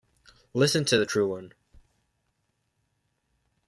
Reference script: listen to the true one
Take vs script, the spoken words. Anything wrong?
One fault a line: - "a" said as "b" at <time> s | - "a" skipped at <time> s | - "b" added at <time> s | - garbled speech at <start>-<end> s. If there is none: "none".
none